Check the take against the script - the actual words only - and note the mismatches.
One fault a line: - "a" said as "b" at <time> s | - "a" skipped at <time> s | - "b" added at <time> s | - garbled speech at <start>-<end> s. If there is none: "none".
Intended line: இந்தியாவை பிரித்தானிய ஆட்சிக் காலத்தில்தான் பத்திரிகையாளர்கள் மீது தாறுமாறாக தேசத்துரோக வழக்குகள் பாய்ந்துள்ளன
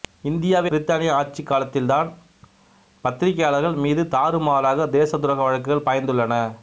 none